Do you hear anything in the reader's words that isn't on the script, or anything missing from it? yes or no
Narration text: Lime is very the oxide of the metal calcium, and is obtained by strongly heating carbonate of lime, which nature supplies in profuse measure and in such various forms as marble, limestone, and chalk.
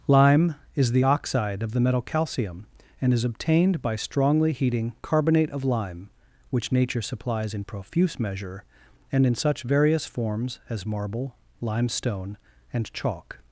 yes